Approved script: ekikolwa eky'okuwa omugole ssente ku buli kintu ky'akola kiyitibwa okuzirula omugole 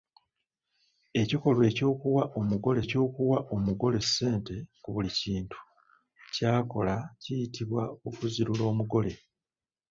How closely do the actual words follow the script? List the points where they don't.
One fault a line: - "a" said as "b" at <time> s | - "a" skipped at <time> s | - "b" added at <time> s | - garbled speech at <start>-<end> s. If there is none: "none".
- "eky'okuwa omugole" added at 2.8 s